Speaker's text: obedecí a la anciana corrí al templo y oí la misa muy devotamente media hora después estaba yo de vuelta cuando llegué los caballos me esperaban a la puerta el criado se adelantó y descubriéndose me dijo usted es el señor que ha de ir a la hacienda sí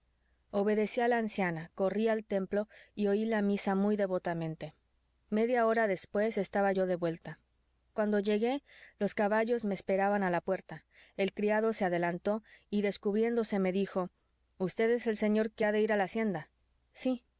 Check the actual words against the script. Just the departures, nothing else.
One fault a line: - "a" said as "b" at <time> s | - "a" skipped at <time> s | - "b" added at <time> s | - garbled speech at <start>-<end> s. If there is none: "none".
none